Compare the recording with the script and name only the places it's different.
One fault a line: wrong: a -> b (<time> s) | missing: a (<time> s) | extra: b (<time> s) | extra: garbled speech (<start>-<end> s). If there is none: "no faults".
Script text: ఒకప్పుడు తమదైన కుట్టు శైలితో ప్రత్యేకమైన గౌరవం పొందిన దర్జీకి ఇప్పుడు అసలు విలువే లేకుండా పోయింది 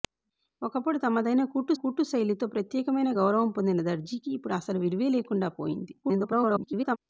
extra: కుట్టు (1.7 s)
extra: garbled speech (6.0-7.0 s)